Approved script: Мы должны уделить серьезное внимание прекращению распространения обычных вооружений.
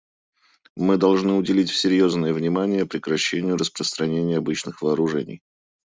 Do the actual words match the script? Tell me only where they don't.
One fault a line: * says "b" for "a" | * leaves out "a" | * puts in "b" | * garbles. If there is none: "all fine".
all fine